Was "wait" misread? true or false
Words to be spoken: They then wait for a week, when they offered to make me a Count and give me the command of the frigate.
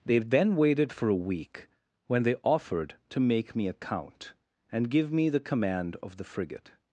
true